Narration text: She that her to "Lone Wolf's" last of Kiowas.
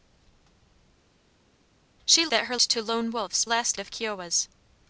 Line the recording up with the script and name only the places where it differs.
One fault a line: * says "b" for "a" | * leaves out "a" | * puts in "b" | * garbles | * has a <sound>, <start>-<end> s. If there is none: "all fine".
all fine